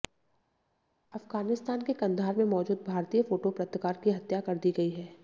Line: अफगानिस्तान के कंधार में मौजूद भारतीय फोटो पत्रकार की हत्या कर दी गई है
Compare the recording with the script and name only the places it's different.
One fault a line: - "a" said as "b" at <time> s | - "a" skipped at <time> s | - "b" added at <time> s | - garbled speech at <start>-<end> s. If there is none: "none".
none